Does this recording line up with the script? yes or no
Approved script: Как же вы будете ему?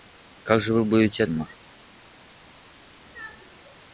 yes